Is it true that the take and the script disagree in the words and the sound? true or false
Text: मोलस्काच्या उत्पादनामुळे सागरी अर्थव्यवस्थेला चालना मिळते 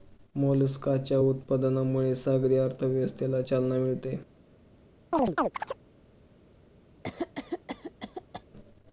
true